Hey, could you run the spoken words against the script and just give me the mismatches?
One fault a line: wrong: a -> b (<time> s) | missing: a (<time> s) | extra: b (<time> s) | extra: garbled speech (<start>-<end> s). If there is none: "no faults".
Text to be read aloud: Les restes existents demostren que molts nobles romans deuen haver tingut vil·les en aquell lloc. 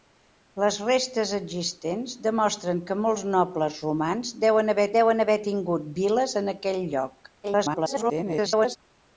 extra: deuen haver (5.0 s)
extra: garbled speech (7.4-8.8 s)